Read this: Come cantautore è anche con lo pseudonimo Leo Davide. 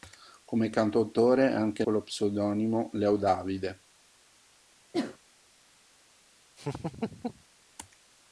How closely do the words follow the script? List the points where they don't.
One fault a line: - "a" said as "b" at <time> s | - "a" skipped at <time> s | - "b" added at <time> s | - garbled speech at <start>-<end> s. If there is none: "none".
none